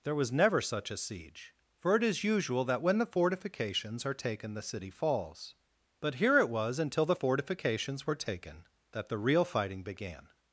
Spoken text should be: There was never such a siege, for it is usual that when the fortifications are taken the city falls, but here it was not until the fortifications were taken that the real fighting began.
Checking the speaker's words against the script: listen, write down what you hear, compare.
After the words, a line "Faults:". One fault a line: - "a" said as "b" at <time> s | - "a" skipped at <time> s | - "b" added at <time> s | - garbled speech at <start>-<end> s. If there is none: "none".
There was never such a siege, for it is usual that when the fortifications are taken the city falls, but here it was until the fortifications were taken that the real fighting began.
Faults:
- "not" skipped at 6.8 s